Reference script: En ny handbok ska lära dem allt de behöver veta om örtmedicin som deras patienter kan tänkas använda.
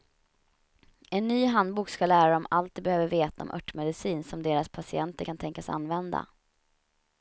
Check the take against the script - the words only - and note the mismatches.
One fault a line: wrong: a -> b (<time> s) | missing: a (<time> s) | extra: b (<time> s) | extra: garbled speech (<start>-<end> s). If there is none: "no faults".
no faults